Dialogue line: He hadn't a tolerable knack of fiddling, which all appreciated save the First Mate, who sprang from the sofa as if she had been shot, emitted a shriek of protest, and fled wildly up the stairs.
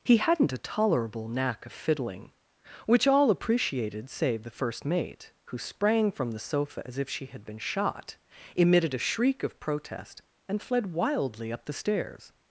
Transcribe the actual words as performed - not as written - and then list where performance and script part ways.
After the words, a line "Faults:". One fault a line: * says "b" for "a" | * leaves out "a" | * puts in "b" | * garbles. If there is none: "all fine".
He hadn't a tolerable knack of fiddling, which all appreciated save the First Mate, who sprang from the sofa as if she had been shot, emitted a shriek of protest, and fled wildly up the stairs.
Faults:
all fine